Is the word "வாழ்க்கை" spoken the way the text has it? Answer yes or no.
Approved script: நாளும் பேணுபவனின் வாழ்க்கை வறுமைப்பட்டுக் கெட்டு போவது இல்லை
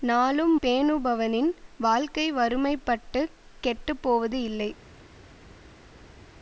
yes